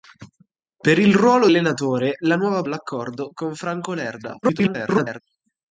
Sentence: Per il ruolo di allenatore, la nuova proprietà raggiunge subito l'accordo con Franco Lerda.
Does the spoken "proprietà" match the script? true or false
false